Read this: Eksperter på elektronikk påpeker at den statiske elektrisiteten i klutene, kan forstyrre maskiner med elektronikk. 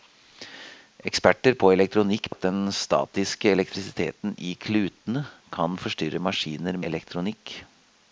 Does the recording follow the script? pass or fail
fail